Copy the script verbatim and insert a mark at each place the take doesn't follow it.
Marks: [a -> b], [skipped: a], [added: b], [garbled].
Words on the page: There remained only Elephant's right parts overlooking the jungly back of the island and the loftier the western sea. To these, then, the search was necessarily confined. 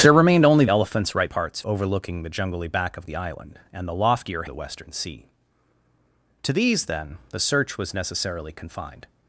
There remained only Elephant's right parts overlooking the jungly back of the island and the loftier the western sea. To these, then, the search was necessarily confined.